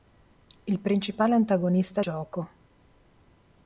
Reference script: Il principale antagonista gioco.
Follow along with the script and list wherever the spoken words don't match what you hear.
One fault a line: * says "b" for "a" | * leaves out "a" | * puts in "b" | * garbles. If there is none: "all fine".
all fine